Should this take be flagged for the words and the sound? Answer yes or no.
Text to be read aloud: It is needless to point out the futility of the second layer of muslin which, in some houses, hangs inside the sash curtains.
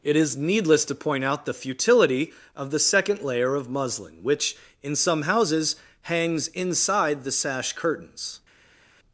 no